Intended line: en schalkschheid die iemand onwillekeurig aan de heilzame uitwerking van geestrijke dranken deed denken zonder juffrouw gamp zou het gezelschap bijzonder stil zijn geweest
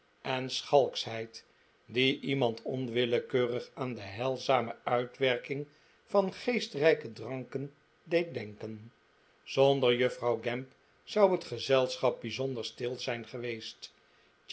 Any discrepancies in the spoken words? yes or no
no